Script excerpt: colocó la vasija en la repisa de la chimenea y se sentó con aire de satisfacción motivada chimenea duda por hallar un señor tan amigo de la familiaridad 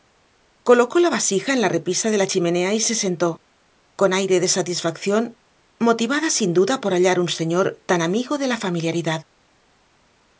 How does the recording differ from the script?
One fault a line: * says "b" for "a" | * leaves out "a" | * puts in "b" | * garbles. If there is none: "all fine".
* says "sin" for "chimenea"